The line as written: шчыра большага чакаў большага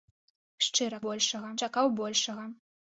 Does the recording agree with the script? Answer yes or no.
yes